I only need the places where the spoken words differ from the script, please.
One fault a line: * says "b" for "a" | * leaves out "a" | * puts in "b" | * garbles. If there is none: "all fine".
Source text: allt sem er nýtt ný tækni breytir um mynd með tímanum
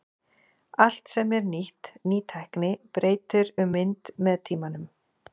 all fine